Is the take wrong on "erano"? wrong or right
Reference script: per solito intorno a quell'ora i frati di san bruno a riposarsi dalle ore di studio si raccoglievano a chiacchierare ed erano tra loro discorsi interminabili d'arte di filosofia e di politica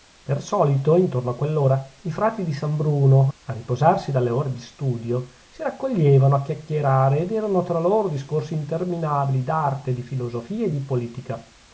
right